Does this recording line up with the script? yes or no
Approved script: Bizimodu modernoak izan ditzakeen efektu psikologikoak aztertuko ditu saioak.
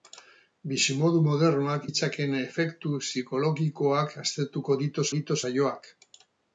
no